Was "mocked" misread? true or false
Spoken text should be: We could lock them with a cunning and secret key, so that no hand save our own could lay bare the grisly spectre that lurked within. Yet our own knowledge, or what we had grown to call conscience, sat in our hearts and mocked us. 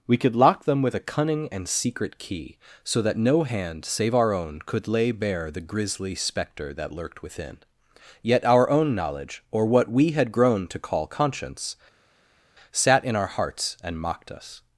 false